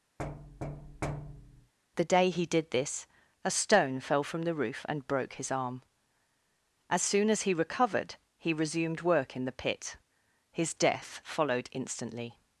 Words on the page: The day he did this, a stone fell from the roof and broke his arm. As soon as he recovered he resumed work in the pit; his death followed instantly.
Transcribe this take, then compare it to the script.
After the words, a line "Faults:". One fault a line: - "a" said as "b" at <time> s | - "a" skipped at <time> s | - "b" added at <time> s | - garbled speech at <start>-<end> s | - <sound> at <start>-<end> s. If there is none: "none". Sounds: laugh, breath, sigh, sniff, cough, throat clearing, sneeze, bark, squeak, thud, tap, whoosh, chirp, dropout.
The day he did this, a stone fell from the roof and broke his arm. As soon as he recovered he resumed work in the pit; his death followed instantly.
Faults:
- thud at 0.2-1.7 s